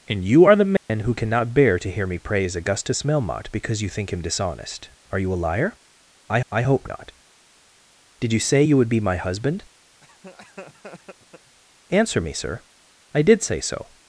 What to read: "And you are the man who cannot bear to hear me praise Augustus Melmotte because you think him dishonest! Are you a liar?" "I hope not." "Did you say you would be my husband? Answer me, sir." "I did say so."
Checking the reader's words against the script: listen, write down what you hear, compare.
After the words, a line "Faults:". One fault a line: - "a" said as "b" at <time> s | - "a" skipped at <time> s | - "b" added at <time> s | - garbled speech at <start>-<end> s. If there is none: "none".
"And you are the man who cannot bear to hear me praise Augustus Melmotte because you think him dishonest! Are you a liar?" "I I hope not." "Did you say you would be my husband? Answer me, sir." "I did say so."
Faults:
- "I" added at 6.5 s